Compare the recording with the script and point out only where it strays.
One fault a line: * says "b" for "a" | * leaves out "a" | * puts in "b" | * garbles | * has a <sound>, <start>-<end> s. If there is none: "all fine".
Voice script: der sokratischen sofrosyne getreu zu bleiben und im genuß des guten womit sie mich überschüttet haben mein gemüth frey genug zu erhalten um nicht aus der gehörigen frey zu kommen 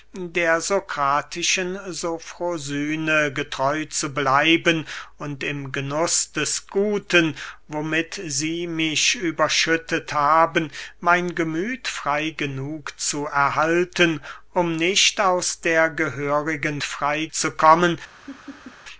* has a laugh, 18.2-18.8 s